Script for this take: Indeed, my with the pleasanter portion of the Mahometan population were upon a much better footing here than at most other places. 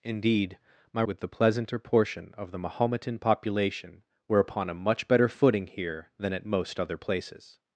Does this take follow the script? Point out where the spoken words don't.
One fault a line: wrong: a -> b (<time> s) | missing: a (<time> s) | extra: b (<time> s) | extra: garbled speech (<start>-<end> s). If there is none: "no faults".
no faults